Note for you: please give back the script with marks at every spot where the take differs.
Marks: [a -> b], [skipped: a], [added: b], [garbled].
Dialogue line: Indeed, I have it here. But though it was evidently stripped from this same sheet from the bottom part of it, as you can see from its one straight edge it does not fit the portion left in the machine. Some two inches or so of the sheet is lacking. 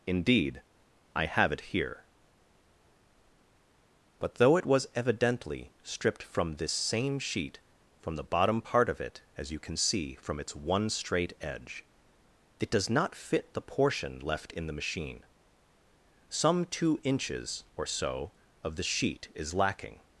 Indeed, I have it here. But though it was evidently stripped from this same sheet from the bottom part of it, as you can see from its one straight edge it does not fit the portion left in the machine. Some two inches or so of the sheet is lacking.